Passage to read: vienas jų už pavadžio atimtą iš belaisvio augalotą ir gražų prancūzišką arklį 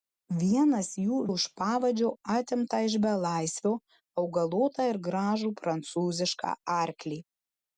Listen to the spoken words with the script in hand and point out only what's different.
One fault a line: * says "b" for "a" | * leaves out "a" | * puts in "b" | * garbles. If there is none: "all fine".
all fine